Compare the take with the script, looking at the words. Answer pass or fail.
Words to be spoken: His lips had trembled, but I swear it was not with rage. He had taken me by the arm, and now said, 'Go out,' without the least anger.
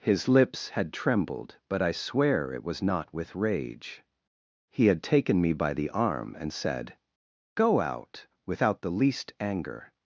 fail